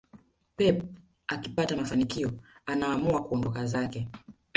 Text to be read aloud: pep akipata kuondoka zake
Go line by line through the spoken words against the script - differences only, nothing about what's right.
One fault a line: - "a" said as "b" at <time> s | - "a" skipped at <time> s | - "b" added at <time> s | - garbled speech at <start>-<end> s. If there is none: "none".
- "mafanikio anaamua" added at 1.8 s